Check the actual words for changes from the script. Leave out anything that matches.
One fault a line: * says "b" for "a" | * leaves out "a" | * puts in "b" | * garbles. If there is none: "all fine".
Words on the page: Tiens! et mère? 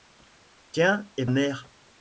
all fine